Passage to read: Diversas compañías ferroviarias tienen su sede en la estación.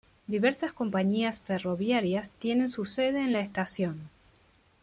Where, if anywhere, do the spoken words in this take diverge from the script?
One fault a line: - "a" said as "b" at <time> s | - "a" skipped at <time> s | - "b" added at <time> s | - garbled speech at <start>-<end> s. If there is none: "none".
none